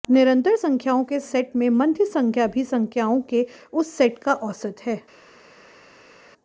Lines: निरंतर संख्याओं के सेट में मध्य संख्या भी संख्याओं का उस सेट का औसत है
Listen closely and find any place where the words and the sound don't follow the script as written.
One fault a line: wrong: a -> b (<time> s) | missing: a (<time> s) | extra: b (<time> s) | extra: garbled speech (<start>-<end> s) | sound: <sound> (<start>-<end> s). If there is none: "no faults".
wrong: का -> के (3.2 s)